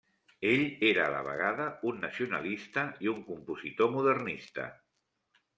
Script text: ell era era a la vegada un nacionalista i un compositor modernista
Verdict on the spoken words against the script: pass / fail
fail